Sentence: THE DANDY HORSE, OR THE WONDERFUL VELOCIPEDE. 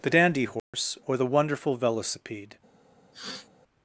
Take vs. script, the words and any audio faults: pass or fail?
fail